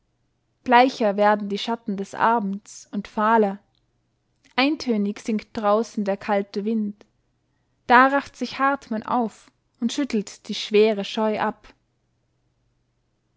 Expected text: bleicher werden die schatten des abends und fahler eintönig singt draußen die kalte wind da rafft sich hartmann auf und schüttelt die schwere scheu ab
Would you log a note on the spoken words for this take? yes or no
yes